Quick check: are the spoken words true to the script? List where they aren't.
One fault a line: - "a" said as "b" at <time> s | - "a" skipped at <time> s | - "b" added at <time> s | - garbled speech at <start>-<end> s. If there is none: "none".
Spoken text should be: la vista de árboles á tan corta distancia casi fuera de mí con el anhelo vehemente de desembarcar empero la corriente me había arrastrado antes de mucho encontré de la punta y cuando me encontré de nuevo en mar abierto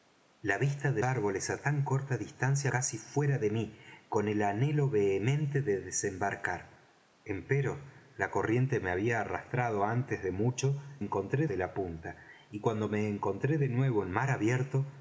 none